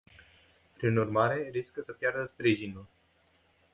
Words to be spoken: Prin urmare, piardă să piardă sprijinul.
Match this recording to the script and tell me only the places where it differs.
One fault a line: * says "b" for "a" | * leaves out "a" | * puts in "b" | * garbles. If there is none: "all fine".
* says "riscă" for "piardă"